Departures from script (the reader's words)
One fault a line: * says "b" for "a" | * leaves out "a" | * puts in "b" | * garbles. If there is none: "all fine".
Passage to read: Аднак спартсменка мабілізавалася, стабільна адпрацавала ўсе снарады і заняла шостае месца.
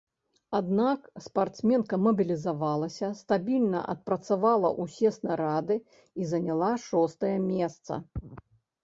all fine